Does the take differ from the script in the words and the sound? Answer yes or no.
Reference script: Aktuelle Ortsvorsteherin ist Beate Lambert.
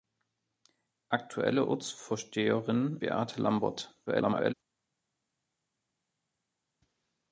yes